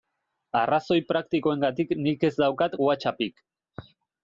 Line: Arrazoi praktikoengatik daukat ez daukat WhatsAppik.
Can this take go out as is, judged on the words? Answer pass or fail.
fail